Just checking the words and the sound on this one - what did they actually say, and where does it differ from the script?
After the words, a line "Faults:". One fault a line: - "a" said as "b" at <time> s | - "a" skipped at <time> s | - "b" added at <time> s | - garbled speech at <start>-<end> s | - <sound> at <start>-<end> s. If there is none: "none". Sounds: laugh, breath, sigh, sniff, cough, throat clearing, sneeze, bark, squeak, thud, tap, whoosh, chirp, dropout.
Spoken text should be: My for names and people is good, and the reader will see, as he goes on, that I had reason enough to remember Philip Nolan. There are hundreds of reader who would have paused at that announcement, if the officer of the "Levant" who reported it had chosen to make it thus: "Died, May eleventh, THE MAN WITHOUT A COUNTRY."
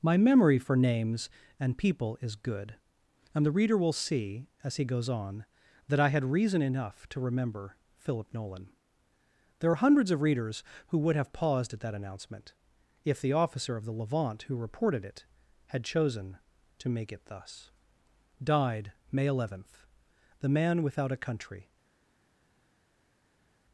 My memory for names and people is good, and the reader will see, as he goes on, that I had reason enough to remember Philip Nolan. There are hundreds of readers who would have paused at that announcement, if the officer of the "Levant" who reported it had chosen to make it thus: "Died, May eleventh, THE MAN WITHOUT A COUNTRY."
Faults:
- "memory" added at 0.2 s
- "reader" said as "readers" at 10.2 s